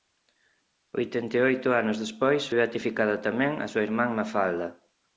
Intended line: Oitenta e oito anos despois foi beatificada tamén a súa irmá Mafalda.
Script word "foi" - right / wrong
wrong